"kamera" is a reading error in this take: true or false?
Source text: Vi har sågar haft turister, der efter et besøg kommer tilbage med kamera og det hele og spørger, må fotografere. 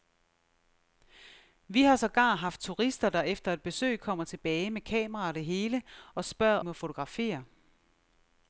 false